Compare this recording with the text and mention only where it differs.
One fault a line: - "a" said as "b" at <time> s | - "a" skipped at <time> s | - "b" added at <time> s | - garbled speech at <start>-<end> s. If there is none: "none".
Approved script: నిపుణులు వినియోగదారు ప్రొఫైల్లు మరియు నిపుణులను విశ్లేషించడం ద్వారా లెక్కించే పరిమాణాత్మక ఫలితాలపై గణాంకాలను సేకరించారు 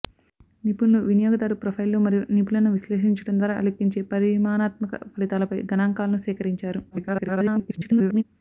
- garbled speech at 6.9-8.2 s